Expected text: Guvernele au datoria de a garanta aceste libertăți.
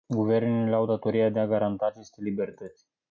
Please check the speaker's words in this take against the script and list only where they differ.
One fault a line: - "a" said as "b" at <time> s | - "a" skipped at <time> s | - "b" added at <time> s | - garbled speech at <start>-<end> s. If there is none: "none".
none